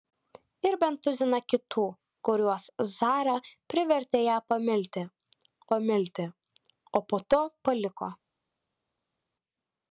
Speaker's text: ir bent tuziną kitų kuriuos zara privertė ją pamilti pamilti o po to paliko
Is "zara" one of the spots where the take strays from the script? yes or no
no